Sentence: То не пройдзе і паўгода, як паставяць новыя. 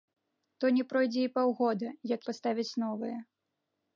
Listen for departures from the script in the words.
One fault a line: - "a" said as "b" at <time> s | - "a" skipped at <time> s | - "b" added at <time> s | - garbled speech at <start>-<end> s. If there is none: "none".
none